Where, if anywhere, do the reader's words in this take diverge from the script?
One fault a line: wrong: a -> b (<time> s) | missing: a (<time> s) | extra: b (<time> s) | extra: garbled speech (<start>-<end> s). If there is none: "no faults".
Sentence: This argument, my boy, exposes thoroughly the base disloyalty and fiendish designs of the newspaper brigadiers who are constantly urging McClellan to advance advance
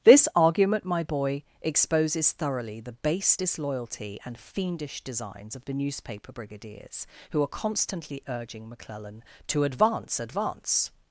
no faults